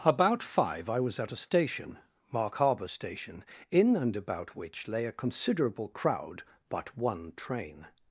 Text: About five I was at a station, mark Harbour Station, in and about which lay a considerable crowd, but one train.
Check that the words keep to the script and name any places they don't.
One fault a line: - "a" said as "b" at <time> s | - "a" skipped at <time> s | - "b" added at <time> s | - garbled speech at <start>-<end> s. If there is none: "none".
none